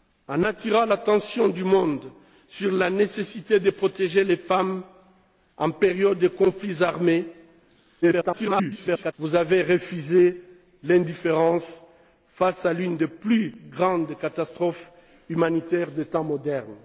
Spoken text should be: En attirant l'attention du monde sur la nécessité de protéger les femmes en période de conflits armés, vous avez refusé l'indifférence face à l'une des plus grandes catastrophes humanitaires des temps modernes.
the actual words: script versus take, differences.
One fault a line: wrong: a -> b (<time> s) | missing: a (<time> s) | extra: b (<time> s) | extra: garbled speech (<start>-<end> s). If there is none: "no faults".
extra: garbled speech (8.0-9.1 s)